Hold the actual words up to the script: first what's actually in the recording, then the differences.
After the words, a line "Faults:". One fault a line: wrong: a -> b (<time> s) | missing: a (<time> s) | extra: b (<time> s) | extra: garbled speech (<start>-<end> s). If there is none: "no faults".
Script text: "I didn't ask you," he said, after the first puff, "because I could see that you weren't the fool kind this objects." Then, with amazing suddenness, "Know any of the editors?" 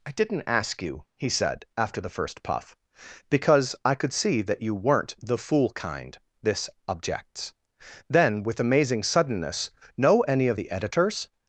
"I didn't ask you," he said, after the first puff, "because I could see that you weren't the fool kind this objects." Then, with amazing suddenness, "Know any of the editors?"
Faults:
no faults